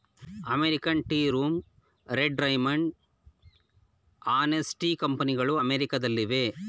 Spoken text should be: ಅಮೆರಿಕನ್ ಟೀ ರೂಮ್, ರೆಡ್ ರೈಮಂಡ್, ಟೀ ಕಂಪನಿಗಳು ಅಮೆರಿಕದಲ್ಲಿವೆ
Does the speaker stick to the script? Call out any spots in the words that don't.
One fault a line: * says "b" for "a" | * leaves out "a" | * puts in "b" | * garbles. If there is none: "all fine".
* puts in "ಹಾನೆಸ್"